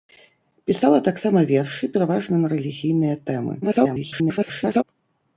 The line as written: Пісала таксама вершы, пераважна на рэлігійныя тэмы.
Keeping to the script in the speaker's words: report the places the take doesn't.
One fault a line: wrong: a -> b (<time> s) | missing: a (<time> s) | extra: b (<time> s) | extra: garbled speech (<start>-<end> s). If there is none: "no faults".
extra: garbled speech (3.6-4.8 s)